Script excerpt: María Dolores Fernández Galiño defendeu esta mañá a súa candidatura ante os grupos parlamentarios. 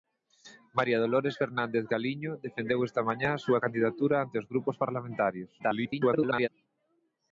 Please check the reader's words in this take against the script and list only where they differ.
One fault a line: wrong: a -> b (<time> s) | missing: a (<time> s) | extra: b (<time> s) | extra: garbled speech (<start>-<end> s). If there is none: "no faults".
extra: garbled speech (5.6-6.5 s)